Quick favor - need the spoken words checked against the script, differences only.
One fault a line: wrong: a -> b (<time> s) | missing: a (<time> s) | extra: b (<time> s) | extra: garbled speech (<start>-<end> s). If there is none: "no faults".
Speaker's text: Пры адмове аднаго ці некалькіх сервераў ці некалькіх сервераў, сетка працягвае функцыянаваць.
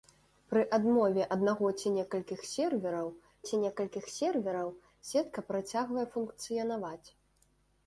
no faults